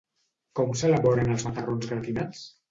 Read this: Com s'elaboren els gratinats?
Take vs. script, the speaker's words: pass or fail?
fail